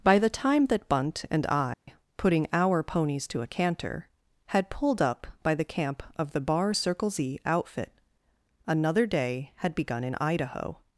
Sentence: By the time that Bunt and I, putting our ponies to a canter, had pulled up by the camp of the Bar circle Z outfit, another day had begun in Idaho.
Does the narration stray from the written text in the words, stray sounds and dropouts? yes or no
yes